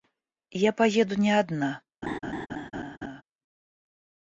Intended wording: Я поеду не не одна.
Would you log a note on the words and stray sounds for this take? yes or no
yes